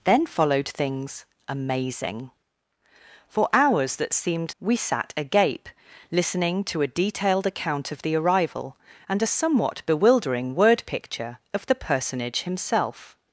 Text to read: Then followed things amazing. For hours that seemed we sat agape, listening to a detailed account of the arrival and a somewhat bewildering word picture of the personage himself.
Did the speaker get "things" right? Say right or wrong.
right